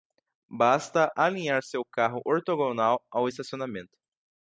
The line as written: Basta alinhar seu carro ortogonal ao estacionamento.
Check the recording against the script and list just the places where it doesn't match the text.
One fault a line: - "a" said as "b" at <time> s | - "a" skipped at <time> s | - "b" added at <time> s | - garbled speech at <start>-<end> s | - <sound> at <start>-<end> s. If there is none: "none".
none